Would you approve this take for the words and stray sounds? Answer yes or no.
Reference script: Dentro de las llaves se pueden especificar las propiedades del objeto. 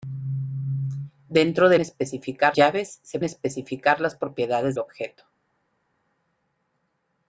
no